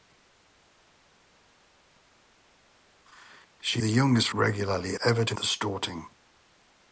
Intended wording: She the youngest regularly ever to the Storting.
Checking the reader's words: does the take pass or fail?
pass